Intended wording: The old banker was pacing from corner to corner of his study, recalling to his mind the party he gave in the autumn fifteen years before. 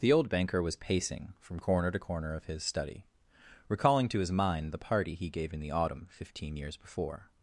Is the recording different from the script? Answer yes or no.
no